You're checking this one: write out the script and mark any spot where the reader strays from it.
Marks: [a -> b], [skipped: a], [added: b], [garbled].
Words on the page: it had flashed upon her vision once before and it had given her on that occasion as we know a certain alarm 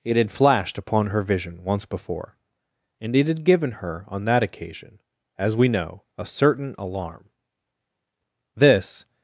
it had flashed upon her vision once before and it had given her on that occasion as we know a certain alarm [added: this]